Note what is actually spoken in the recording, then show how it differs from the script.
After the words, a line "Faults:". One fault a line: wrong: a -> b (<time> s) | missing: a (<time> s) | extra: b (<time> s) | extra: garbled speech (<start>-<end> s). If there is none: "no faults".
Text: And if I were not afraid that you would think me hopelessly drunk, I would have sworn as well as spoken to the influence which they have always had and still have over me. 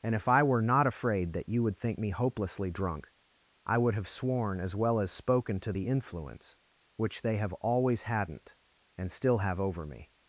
And if I were not afraid that you would think me hopelessly drunk, I would have sworn as well as spoken to the influence which they have always hadn't and still have over me.
Faults:
wrong: had -> hadn't (8.0 s)